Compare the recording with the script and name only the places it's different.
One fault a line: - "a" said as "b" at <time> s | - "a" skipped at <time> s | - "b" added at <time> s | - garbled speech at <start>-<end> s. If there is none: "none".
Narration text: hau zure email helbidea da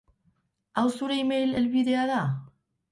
none